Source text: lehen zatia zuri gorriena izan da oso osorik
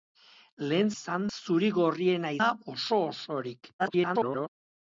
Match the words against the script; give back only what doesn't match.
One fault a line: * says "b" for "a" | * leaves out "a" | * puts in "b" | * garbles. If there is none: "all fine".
* says "izan" for "zatia"
* leaves out "izan"
* garbles